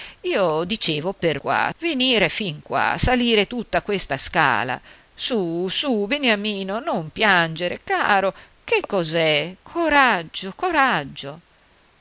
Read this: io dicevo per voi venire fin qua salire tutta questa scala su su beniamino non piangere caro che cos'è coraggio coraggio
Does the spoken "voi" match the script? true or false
false